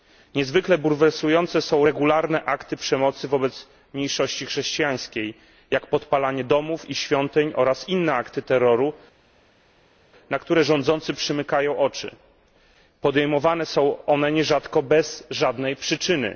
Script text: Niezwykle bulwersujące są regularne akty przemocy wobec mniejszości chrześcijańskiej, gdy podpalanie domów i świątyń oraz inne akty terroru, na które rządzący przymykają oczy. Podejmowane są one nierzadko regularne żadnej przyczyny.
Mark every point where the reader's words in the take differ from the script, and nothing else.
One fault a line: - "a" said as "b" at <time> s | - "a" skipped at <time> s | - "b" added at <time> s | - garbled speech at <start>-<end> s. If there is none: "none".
- "gdy" said as "jak" at 5.7 s
- "regularne" said as "bez" at 14.8 s